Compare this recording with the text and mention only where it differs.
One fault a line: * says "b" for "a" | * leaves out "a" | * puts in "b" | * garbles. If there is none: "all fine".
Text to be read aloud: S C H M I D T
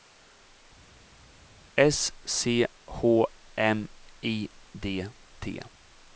all fine